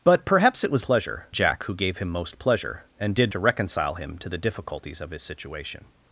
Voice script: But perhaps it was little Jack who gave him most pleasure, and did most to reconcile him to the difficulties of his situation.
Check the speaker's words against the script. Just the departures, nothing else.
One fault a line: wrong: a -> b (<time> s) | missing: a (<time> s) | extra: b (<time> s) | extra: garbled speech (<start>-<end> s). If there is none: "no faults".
wrong: little -> pleasure (0.8 s)
missing: most (3.3 s)